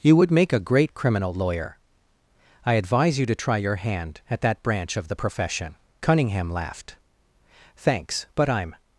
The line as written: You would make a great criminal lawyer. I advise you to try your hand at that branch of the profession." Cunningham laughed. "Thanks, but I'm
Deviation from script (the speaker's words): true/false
false